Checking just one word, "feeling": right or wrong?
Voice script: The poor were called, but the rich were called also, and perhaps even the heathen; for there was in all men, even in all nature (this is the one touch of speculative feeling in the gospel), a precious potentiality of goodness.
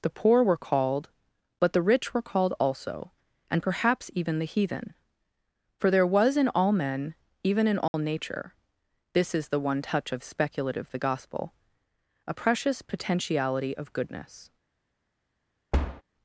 wrong